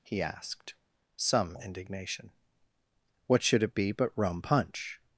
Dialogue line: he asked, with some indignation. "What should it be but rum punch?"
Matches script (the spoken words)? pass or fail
fail